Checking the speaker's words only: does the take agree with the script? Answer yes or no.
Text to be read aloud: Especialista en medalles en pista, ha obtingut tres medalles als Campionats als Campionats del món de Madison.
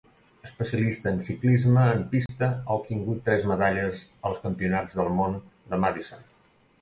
no